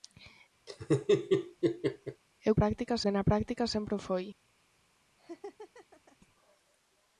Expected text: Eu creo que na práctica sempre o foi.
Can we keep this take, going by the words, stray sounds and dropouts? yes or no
no